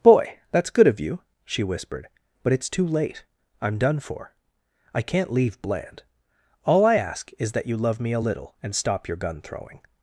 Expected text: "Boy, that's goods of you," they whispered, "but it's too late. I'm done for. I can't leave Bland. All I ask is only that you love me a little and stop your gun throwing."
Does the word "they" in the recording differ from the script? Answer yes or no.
yes